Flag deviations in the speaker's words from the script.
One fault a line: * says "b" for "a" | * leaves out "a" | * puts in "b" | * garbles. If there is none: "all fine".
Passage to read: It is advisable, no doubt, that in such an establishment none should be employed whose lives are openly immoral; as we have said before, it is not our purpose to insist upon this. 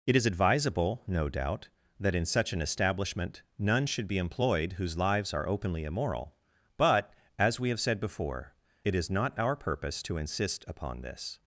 * puts in "but"